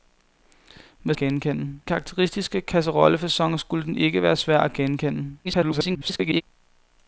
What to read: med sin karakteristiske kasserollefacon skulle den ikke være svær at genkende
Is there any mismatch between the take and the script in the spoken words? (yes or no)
yes